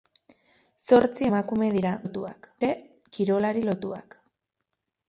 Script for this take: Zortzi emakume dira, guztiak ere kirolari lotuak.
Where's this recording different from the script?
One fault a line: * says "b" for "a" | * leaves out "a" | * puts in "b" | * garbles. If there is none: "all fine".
* says "lotuak" for "guztiak"